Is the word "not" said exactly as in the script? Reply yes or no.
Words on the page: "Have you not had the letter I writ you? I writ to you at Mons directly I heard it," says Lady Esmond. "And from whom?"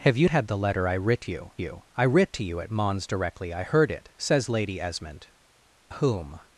no